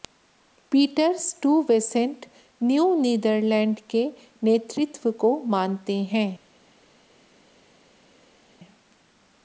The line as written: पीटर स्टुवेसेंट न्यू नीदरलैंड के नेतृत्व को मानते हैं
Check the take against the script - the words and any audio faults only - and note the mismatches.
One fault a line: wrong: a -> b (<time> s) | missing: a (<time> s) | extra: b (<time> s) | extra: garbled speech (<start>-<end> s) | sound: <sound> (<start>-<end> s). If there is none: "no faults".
no faults